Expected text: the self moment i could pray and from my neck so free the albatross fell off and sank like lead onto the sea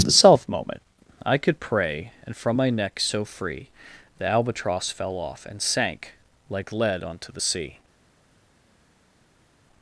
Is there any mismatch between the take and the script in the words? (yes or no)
no